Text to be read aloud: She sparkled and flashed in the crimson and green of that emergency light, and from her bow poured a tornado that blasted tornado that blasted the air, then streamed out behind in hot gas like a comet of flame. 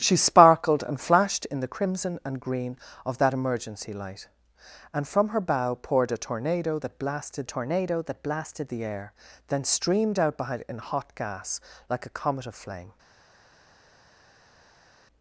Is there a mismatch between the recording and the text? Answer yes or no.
no